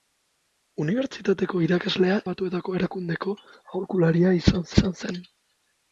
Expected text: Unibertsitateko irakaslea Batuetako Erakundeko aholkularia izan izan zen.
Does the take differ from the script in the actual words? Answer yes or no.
no